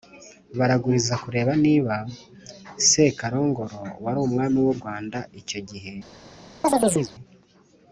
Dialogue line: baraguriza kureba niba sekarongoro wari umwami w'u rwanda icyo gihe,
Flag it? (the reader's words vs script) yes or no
no